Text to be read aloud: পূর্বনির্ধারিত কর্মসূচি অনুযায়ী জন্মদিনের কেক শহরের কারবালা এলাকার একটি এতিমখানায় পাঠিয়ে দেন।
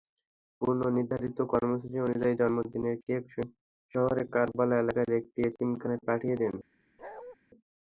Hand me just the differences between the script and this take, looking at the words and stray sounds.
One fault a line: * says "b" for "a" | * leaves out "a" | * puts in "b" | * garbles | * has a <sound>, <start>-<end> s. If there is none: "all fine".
* has a bark, 7.0-7.4 s